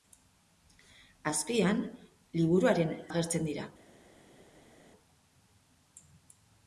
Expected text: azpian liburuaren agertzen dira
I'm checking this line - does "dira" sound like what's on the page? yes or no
yes